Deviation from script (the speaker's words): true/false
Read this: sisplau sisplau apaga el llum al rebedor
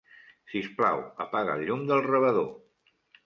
true